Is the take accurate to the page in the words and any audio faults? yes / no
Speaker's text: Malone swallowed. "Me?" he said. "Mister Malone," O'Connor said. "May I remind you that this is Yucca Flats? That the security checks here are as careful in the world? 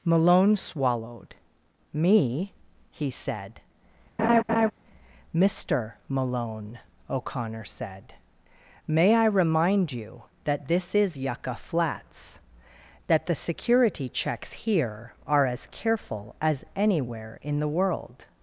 no